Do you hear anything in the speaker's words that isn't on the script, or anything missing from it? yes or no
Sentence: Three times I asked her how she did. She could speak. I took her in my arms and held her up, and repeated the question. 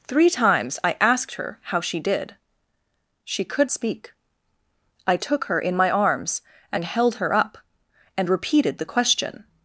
no